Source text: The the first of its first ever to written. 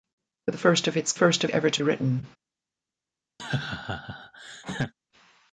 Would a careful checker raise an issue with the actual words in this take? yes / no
no